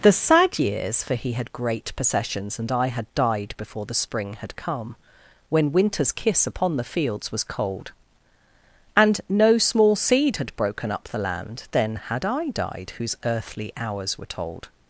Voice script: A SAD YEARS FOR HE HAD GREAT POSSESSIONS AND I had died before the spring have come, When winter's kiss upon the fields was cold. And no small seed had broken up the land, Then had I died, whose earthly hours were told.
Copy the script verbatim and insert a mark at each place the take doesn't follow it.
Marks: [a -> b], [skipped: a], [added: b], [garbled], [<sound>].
[A -> THE] SAD YEARS FOR HE HAD GREAT POSSESSIONS AND I had died before the spring [have -> had] come, When winter's kiss upon the fields was cold. And no small seed had broken up the land, Then had I died, whose earthly hours were told.